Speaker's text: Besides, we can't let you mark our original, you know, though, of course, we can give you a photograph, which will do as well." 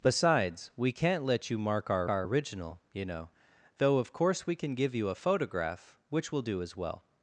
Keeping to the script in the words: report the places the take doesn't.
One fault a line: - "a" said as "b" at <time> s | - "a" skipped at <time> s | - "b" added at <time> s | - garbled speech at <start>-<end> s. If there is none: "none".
- "our" added at 2.1 s